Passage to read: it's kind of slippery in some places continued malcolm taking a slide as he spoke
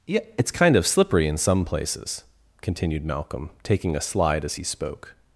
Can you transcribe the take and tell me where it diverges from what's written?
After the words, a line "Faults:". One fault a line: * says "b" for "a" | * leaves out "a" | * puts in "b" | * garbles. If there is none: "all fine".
yeah it's kind of slippery in some places continued malcolm taking a slide as he spoke
Faults:
* puts in "yeah"